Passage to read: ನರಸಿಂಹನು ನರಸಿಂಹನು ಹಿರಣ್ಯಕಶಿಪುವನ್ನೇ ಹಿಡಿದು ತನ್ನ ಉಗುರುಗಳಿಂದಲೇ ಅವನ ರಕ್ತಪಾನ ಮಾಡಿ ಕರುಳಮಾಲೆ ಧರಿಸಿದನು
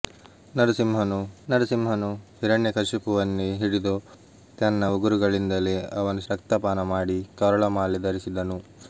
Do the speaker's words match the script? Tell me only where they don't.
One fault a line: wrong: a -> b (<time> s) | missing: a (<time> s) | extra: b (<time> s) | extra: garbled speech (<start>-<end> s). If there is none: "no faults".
no faults